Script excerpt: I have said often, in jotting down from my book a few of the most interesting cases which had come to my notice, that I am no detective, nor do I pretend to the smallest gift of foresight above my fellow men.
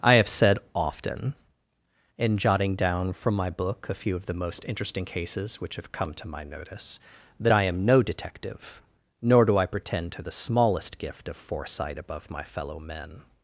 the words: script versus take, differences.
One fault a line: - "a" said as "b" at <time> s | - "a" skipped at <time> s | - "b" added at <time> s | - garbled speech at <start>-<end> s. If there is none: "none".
- "had" said as "have" at 5.8 s